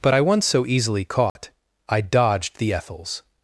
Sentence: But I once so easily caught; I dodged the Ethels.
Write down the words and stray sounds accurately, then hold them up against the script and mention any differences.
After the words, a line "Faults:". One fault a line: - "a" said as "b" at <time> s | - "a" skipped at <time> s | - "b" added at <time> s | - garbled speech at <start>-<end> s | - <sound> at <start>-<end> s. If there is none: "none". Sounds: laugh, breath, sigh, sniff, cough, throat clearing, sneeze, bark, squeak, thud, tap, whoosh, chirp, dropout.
But I once so easily caught; I dodged the Ethels.
Faults:
- dropout at 1.3-1.4 s